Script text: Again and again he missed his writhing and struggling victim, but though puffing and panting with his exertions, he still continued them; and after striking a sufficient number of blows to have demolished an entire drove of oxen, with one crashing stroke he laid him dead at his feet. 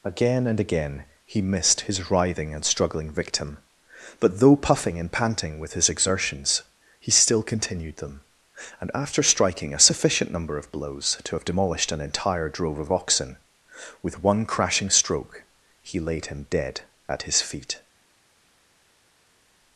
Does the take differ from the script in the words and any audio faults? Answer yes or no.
no